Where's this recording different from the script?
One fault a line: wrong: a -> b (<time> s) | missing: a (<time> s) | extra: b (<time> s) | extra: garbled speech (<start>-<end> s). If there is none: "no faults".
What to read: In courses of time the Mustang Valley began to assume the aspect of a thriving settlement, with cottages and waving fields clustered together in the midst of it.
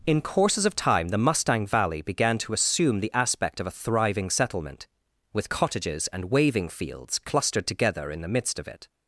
no faults